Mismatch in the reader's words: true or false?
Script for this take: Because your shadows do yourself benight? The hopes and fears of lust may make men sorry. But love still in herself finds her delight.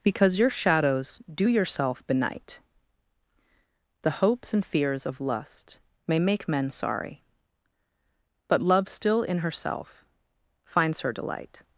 false